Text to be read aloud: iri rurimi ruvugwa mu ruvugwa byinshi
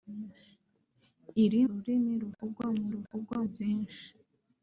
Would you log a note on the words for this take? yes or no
no